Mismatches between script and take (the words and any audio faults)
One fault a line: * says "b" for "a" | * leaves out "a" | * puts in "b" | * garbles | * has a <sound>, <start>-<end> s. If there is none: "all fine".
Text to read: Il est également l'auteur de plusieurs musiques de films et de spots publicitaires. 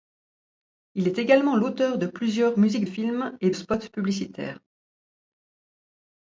* leaves out "de"
* leaves out "de"